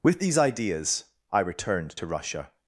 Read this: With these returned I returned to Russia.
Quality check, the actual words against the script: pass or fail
fail